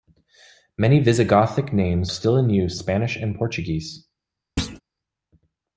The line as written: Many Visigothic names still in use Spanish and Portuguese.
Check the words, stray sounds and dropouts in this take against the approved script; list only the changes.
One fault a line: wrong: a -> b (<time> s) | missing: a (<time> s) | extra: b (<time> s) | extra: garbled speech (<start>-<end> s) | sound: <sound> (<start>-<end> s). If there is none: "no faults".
sound: thud (4.6-4.8 s)